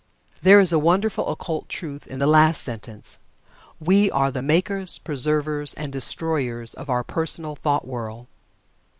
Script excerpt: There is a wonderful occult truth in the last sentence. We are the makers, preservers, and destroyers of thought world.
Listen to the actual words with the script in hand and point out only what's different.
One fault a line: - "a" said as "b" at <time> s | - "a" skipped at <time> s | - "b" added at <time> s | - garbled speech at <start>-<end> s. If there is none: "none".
- "our personal" added at 6.9 s